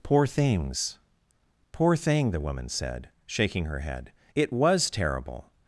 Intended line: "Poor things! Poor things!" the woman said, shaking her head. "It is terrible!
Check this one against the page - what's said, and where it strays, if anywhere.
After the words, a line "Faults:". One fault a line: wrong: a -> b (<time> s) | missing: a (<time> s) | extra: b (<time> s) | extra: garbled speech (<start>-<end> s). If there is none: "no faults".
"Poor things! Poor thing!" the woman said, shaking her head. "It was terrible!
Faults:
wrong: things -> thing (1.9 s)
wrong: is -> was (4.5 s)